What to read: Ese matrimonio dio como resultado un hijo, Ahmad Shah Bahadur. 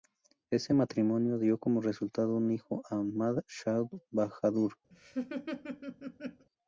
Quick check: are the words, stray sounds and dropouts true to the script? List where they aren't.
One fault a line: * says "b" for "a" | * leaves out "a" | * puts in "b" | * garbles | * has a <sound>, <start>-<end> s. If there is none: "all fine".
* has a laugh, 4.9-6.5 s